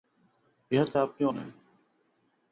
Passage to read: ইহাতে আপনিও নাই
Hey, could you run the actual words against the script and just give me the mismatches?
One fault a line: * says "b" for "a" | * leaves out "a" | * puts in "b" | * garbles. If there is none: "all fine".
all fine